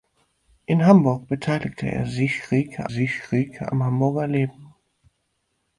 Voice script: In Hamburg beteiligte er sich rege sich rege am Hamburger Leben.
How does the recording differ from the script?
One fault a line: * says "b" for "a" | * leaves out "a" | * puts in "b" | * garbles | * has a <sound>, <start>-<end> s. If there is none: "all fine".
all fine